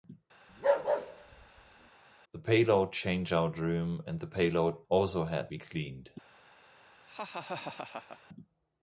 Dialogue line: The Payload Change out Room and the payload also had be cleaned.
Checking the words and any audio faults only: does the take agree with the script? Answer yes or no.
no